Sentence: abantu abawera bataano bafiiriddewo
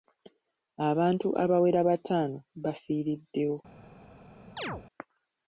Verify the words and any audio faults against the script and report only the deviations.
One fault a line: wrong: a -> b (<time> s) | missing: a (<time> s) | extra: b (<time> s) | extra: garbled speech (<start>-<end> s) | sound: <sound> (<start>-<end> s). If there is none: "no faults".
sound: chirp (4.6-4.8 s)